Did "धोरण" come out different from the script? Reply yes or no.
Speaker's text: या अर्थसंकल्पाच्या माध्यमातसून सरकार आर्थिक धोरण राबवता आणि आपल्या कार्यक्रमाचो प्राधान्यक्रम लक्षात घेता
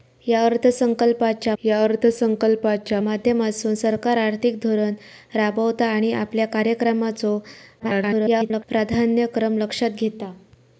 no